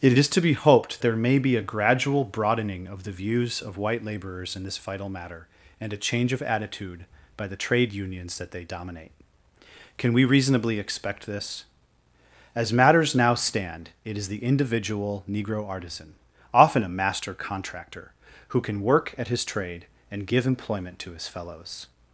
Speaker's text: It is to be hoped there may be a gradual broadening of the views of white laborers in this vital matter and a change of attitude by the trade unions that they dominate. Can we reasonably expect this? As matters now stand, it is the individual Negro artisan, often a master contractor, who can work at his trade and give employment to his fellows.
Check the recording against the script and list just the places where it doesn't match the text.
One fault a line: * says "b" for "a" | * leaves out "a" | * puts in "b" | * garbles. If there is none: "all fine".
all fine